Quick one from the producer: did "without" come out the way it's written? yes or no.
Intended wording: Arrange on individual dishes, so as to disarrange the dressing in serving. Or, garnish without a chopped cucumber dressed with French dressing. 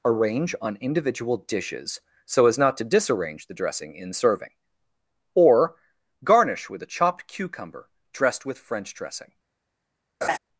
no